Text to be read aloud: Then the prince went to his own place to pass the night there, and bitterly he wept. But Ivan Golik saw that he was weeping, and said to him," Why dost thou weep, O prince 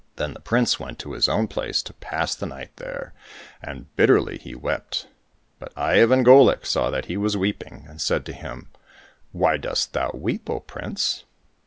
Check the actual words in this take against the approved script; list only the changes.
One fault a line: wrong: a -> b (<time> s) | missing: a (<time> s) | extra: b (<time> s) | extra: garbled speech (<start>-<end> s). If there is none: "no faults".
no faults